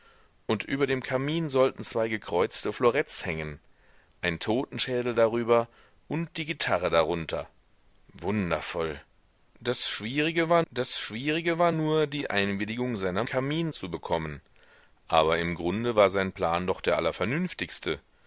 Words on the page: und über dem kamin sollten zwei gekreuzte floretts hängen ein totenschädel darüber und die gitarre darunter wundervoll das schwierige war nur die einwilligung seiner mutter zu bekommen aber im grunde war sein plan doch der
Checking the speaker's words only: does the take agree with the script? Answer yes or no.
no